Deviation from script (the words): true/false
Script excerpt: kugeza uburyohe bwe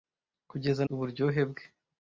false